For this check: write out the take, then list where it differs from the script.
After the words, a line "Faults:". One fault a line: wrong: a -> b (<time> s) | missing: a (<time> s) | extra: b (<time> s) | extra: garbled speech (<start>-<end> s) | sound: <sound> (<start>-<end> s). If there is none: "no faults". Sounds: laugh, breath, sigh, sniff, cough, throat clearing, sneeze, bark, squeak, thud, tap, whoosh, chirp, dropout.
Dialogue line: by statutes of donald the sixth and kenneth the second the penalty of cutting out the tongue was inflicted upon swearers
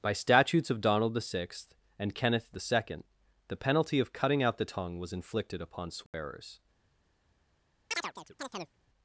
by statutes of donald the sixth and kenneth the second the penalty of cutting out the tongue was inflicted upon swearers
Faults:
sound: dropout (6.1-6.1 s)
sound: chirp (7.9-8.8 s)